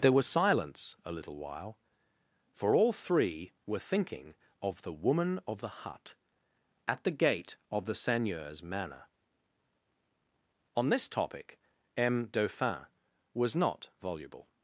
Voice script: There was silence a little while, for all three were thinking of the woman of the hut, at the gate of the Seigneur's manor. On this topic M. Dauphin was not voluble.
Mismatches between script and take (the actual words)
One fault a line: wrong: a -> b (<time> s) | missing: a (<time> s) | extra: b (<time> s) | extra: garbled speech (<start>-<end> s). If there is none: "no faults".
no faults